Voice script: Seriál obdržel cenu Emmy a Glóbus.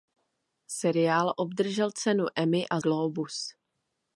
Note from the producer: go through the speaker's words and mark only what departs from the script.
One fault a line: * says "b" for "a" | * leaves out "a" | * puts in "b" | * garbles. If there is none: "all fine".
all fine